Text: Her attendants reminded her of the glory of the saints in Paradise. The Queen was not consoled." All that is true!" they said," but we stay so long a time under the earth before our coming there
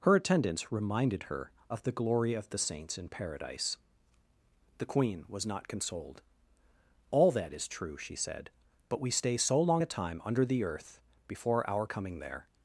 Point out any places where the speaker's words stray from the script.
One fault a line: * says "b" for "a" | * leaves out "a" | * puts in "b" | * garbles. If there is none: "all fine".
* says "she" for "they"